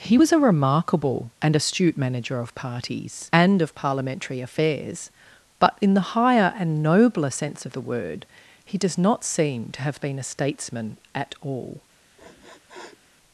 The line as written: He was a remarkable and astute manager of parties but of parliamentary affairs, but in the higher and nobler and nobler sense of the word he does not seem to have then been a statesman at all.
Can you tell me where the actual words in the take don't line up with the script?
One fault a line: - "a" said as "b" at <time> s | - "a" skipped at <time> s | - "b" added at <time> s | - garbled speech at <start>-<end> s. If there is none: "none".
- "but" said as "and" at 3.3 s
- "and nobler" skipped at 7.3 s
- "then" skipped at 10.0 s